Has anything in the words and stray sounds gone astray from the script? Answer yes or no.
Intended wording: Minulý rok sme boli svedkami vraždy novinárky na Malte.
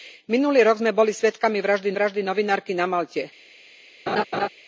yes